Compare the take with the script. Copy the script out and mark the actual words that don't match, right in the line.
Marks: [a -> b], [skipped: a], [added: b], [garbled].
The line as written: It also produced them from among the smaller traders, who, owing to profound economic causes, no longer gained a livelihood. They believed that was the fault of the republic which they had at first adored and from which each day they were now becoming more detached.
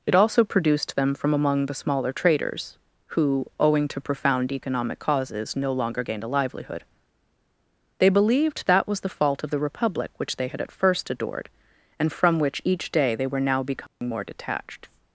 It also produced them from among the smaller traders, who, owing to profound economic causes, no longer gained a livelihood. They believed that was the fault of the republic which they had at first adored and from which each day they were now becoming more detached.